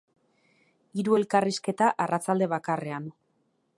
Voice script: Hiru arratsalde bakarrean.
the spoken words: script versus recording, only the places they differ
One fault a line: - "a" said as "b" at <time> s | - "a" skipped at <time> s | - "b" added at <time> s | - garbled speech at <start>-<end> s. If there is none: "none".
- "elkarrizketa" added at 1.2 s